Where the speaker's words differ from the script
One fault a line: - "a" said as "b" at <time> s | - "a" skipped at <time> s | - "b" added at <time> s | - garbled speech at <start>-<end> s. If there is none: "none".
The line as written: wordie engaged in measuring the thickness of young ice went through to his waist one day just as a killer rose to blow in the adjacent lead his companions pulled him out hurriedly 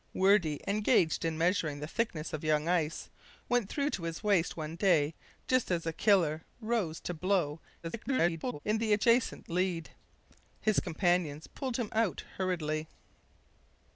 - garbled speech at 7.8-8.6 s